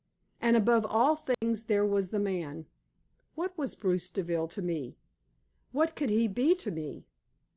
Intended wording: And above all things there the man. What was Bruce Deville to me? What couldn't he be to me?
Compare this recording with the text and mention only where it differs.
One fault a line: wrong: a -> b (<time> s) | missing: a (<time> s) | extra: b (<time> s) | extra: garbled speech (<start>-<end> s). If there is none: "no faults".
extra: was (1.9 s)
wrong: couldn't -> could (6.0 s)